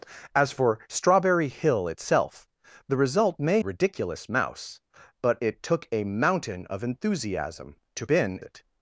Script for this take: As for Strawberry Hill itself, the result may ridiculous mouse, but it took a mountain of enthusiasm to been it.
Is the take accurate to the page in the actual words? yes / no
yes